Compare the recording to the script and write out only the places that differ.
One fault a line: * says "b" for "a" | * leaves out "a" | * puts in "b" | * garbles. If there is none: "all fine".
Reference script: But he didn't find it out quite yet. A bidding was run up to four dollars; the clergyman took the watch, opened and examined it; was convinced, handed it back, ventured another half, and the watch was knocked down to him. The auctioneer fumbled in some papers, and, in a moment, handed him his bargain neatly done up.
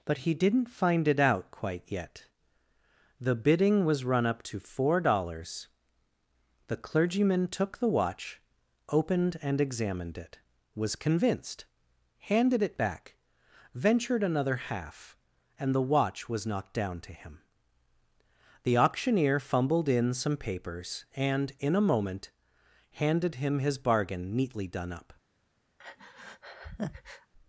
* says "The" for "A"